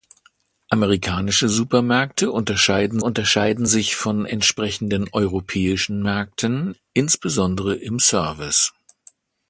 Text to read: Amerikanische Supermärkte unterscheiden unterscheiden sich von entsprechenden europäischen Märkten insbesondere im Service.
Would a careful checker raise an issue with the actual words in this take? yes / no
no